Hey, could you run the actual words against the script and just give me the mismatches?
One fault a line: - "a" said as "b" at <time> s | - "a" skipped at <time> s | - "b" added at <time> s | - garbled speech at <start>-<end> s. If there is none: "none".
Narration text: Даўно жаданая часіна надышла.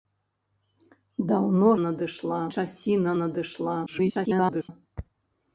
- "жаданая" said as "надышла" at 1.8 s
- garbled speech at 3.9-4.7 s